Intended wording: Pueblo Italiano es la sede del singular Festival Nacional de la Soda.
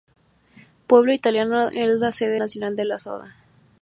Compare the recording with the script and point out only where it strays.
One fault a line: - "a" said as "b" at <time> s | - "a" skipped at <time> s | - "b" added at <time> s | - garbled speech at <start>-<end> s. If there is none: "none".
- "del singular Festival" skipped at 2.4 s